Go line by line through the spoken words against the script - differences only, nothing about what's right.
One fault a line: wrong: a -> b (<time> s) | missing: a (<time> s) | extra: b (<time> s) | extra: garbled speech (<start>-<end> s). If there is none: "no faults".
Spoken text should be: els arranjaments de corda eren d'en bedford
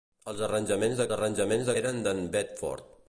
wrong: corda -> arranjaments (1.2 s)